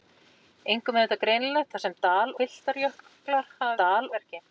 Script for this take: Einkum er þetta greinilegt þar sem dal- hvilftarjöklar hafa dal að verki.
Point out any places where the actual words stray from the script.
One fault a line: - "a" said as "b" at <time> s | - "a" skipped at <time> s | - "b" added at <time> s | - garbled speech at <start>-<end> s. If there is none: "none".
none